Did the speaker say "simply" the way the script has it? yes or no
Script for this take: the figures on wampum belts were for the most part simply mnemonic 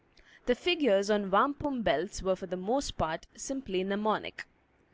yes